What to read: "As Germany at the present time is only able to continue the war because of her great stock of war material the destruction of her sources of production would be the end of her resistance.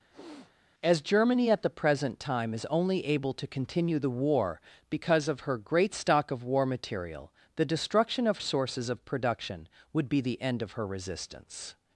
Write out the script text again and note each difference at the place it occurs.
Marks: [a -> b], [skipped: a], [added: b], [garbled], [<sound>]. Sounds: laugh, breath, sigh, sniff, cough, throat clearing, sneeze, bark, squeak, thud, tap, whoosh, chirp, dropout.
[sniff] "As Germany at the present time is only able to continue the war because of her great stock of war material the destruction of [skipped: her] sources of production would be the end of her resistance.